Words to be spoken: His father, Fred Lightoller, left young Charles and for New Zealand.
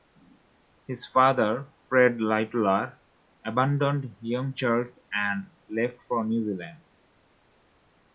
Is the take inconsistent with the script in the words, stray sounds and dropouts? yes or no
yes